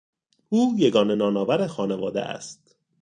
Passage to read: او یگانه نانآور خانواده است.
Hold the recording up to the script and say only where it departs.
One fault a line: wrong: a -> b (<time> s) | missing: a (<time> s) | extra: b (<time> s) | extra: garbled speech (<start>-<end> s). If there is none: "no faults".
no faults